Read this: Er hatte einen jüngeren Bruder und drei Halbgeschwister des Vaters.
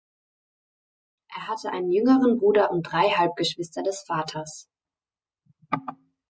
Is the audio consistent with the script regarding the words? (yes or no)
yes